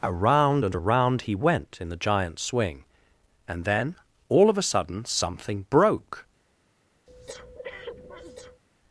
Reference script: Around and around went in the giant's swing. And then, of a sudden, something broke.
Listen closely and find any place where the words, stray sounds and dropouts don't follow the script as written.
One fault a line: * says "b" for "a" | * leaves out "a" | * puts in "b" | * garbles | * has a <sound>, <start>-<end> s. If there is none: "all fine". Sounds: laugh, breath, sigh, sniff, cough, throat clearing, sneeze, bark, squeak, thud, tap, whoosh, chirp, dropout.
* puts in "he"
* puts in "all"
* has a breath, 7.1-8.6 s